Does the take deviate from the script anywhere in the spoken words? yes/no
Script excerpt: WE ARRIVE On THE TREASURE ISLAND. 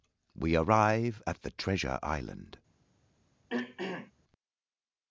yes